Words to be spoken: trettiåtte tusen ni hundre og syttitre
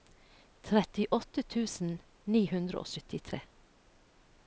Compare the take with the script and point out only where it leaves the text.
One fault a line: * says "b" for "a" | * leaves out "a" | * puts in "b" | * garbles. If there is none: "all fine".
all fine